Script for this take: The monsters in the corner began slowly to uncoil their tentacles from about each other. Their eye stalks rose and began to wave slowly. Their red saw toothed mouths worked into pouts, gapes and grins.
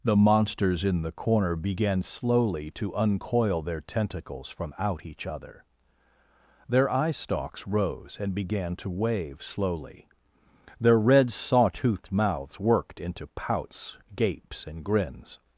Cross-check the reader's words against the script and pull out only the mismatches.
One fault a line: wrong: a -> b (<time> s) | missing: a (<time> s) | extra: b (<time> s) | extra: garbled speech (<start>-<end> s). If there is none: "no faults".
wrong: about -> out (4.8 s)